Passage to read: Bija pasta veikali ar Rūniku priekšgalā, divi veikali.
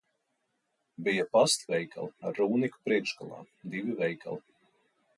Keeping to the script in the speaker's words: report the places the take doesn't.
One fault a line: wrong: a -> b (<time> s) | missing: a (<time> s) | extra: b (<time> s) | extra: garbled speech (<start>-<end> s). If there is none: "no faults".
no faults